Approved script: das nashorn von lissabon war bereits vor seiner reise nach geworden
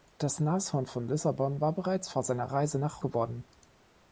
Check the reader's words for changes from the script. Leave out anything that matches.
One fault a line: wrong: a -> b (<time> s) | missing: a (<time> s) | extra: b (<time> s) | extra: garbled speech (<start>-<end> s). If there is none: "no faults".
no faults